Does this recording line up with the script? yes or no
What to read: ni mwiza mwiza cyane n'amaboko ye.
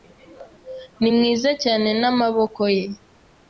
no